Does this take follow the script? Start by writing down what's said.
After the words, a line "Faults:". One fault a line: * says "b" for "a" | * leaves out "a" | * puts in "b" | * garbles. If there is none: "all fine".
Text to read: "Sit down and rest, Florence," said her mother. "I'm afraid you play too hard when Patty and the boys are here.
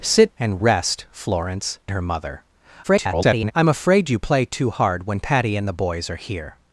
"Sit and rest, Florence," her mother. [garbled] "I'm afraid you play too hard when Patty and the boys are here.
Faults:
* leaves out "down"
* leaves out "said"
* garbles